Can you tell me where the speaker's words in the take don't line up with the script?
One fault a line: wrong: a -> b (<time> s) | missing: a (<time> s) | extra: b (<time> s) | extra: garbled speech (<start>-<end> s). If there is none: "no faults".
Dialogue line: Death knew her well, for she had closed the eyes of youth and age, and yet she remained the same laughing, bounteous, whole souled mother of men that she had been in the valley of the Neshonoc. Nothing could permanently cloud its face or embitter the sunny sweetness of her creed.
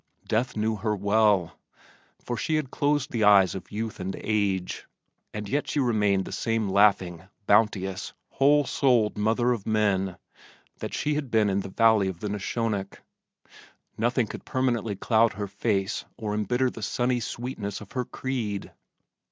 wrong: its -> her (15.3 s)